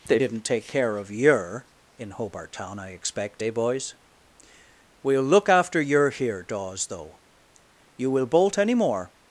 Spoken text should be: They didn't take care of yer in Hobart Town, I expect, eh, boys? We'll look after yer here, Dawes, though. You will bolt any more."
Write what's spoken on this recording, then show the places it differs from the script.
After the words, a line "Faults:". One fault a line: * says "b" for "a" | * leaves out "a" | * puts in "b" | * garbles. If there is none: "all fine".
They didn't take care of yer in Hobart Town, I expect, eh, boys? We'll look after yer here, Dawes, though. You will bolt any more."
Faults:
all fine